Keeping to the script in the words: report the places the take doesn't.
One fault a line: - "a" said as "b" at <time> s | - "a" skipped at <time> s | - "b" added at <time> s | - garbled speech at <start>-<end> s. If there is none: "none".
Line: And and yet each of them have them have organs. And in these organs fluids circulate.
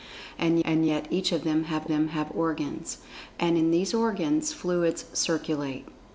none